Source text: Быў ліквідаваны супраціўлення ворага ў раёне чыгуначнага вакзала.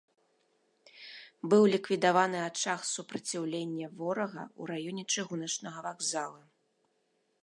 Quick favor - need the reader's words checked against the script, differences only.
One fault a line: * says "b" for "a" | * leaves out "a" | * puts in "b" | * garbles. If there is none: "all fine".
* puts in "ачаг"